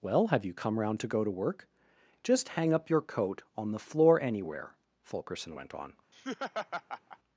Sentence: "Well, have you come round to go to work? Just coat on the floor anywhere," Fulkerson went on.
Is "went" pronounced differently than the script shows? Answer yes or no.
no